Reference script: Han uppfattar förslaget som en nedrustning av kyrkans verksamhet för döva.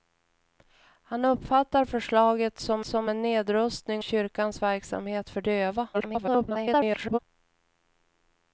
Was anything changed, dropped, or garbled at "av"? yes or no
yes